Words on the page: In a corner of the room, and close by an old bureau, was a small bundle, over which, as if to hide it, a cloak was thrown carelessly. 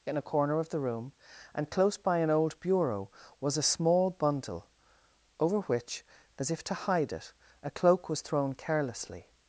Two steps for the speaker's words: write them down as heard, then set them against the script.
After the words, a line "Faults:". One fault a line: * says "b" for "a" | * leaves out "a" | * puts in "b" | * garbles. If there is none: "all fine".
In a corner of the room, and close by an old bureau, was a small bundle, over which, as if to hide it, a cloak was thrown carelessly.
Faults:
all fine